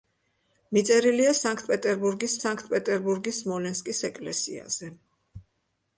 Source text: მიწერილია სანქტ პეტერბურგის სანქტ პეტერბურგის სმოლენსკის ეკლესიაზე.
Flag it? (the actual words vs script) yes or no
no